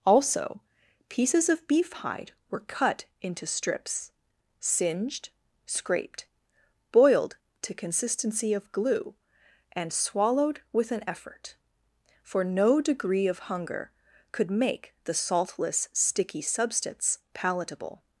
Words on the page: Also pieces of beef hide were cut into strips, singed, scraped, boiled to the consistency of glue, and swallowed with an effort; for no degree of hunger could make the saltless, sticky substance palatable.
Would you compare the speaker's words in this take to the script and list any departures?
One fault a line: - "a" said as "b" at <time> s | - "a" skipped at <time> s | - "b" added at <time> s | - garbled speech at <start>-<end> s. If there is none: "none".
- "the" skipped at 7.7 s